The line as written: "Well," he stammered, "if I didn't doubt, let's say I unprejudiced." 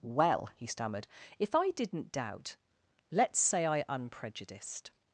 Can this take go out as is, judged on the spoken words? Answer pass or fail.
pass